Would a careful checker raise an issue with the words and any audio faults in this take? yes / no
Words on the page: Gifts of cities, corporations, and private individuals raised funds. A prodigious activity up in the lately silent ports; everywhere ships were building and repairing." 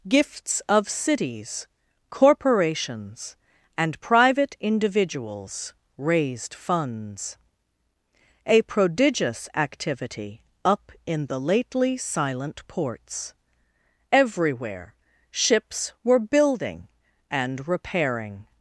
no